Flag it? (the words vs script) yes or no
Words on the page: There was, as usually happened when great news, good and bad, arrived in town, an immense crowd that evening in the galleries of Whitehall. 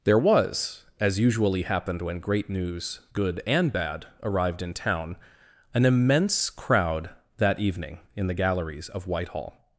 no